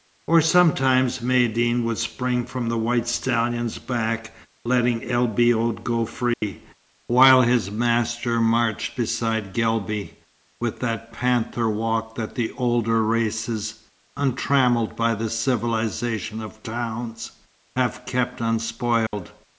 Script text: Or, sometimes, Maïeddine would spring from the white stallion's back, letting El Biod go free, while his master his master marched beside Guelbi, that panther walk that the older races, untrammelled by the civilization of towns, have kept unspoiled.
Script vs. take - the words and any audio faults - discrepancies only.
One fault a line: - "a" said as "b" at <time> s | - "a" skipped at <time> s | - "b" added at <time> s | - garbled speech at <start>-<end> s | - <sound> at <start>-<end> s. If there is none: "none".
- dropout at 6.3-6.4 s
- "his master" skipped at 8.4 s
- "with" added at 10.6 s
- dropout at 19.1-19.1 s